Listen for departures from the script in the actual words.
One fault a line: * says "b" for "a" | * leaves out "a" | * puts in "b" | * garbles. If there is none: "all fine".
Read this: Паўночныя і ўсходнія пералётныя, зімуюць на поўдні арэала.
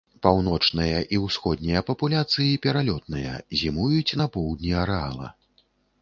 * puts in "папуляцыі"